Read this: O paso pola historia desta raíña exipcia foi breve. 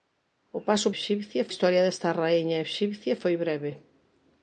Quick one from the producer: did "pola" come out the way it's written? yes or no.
no